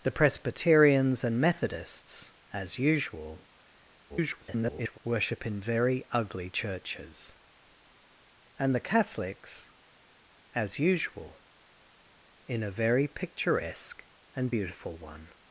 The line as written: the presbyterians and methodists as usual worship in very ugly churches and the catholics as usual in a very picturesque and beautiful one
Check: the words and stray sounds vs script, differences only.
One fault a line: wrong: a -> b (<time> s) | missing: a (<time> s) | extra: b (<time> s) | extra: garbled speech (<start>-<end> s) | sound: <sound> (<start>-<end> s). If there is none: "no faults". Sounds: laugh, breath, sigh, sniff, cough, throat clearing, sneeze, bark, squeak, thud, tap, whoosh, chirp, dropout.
extra: garbled speech (4.1-5.0 s)